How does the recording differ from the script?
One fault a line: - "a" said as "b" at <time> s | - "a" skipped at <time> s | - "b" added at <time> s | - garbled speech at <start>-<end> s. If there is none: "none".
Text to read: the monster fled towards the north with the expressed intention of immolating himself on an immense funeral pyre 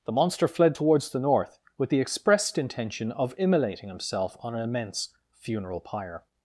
none